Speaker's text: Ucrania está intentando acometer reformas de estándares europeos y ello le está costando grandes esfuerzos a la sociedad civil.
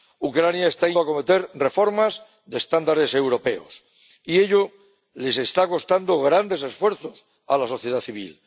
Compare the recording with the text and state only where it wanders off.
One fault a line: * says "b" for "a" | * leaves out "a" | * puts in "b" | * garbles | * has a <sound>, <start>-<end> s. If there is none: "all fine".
* leaves out "intentando"